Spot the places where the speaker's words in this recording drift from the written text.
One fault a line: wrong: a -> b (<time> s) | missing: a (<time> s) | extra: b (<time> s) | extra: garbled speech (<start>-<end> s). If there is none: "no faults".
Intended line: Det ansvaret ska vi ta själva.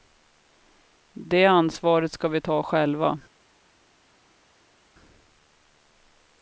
no faults